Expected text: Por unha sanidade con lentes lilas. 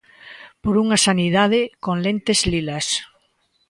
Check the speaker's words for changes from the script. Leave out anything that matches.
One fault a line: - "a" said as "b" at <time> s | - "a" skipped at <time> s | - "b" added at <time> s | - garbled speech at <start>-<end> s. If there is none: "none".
none